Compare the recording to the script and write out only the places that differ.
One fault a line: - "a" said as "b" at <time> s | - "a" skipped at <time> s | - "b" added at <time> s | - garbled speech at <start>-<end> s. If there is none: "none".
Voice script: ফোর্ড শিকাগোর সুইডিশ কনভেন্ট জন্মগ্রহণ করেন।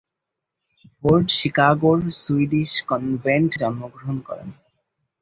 none